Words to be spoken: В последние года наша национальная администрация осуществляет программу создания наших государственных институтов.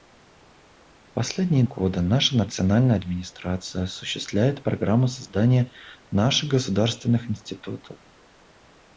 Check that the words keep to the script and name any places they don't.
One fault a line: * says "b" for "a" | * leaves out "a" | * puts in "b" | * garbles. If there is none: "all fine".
all fine